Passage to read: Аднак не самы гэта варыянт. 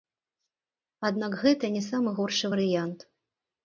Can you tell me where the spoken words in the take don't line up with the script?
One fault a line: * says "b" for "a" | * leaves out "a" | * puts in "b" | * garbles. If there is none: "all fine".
* puts in "гэта"
* says "горшы" for "гэта"